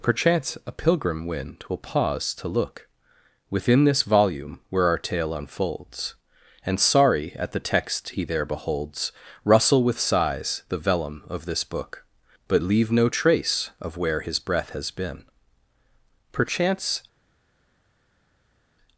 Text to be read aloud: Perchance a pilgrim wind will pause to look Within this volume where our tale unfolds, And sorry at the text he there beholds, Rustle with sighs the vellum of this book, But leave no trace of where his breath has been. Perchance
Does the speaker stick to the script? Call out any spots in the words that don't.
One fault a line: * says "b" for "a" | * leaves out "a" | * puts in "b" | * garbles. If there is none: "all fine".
all fine